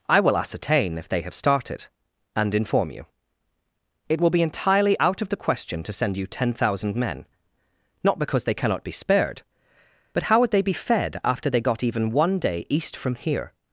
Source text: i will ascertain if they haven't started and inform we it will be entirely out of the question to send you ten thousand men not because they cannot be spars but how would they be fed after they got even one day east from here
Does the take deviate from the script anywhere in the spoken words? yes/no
yes